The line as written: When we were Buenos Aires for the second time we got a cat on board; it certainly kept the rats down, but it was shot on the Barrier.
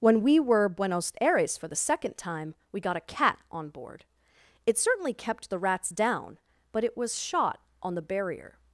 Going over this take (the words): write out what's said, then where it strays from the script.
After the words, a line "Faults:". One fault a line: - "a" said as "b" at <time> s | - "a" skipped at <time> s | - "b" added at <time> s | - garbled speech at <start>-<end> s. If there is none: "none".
When we were Buenos Aires for the second time we got a cat on board; it certainly kept the rats down, but it was shot on the Barrier.
Faults:
none